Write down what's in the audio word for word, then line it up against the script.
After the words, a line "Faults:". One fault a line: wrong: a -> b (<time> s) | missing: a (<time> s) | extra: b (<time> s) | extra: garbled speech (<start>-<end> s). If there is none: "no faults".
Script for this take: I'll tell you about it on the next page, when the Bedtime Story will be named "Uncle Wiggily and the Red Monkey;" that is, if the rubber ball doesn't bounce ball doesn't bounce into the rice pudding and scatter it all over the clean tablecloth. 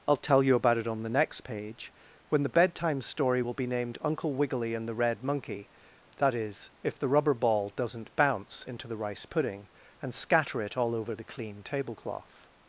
I'll tell you about it on the next page, when the Bedtime Story will be named "Uncle Wiggily and the Red Monkey;" that is, if the rubber ball doesn't bounce into the rice pudding and scatter it all over the clean tablecloth.
Faults:
missing: ball doesn't bounce (8.6 s)